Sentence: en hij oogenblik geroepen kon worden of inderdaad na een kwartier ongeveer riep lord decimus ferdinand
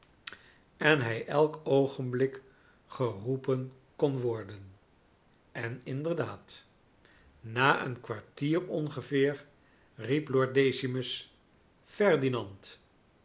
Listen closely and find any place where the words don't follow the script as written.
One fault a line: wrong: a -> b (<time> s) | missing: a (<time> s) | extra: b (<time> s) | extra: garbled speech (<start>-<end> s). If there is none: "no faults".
extra: elk (1.3 s)
wrong: of -> en (5.5 s)